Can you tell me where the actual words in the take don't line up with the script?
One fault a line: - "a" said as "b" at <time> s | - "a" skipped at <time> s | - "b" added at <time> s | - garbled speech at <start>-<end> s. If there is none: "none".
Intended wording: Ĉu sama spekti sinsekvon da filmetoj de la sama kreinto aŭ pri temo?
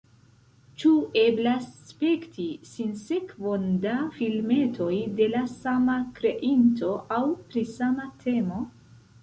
- "sama" said as "eblas" at 1.2 s
- "sama" added at 7.8 s